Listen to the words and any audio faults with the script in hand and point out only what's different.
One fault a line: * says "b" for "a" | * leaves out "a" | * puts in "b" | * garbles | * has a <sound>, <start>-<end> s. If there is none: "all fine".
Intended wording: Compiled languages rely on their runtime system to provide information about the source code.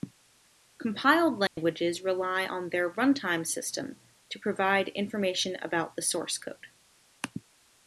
* has a dropout, 1.5-1.6 s